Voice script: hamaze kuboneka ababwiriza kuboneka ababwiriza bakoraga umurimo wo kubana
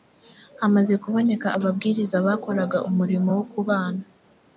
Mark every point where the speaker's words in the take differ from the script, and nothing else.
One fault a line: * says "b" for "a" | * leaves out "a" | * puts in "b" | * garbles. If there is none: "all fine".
* leaves out "kuboneka ababwiriza"